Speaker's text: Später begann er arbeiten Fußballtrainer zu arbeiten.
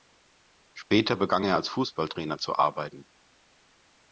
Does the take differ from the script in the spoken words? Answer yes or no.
yes